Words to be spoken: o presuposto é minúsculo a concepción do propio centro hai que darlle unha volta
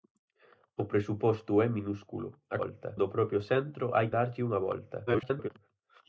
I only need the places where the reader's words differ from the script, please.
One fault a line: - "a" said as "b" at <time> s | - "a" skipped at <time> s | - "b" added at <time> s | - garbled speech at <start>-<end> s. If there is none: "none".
- "concepción" said as "volta" at 2.6 s
- "que" skipped at 4.1 s
- garbled speech at 5.1-5.5 s